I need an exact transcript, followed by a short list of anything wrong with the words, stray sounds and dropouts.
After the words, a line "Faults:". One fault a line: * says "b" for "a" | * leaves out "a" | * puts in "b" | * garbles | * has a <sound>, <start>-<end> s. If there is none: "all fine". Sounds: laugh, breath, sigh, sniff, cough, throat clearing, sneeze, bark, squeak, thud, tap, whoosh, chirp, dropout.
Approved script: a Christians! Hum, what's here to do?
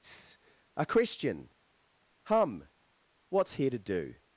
a Christian! Hum, what's here to do?
Faults:
* says "Christian" for "Christians"